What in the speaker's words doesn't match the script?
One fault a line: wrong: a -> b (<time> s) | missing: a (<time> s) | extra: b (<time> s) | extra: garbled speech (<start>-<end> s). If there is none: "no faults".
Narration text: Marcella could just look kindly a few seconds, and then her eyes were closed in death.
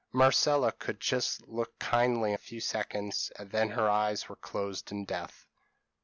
no faults